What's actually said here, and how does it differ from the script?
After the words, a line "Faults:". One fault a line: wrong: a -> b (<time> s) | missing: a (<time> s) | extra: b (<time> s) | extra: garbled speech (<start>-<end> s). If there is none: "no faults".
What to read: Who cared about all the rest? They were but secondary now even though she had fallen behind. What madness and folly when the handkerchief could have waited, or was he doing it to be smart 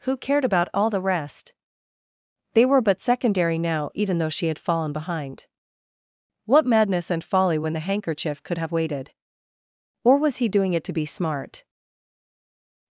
Who cared about all the rest? They were but secondary now even though she had fallen behind. What madness and folly when the handkerchief could have waited, or was he doing it to be smart
Faults:
no faults